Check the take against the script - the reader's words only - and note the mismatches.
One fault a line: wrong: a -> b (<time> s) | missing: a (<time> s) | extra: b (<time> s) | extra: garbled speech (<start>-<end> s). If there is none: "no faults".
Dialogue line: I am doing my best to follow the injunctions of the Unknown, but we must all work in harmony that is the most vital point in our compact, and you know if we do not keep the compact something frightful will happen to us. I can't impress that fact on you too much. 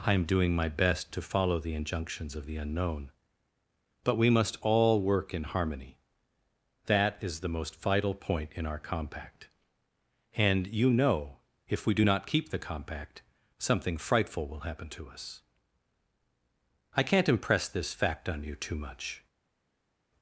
wrong: that -> this (17.7 s)